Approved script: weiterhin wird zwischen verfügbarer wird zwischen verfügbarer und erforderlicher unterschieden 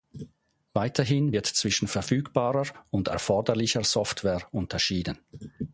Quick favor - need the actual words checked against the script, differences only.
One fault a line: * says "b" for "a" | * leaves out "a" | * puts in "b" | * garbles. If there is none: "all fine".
* leaves out "wird zwischen verfügbarer"
* puts in "software"